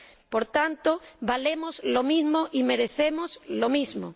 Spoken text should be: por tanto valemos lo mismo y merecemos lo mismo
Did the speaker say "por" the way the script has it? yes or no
yes